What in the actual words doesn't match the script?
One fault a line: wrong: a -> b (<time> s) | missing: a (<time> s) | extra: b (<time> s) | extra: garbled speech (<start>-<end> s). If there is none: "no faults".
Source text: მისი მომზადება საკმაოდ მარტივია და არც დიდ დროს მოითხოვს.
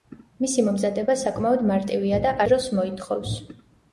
missing: არც დიდ (2.3 s)